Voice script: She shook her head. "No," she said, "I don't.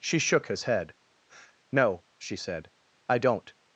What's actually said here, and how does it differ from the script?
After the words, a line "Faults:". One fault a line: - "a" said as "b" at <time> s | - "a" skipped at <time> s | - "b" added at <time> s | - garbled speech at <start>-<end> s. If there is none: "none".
She shook his head. "No," she said, "I don't.
Faults:
- "her" said as "his" at 0.5 s